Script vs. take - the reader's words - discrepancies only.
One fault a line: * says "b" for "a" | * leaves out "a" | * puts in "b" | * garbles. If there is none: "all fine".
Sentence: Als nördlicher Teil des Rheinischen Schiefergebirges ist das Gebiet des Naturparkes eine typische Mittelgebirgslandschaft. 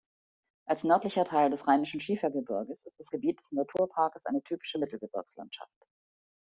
all fine